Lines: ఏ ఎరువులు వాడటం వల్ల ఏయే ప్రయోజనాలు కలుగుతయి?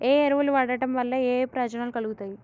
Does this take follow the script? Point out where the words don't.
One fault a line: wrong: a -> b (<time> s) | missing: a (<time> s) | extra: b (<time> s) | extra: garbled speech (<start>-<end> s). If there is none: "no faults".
no faults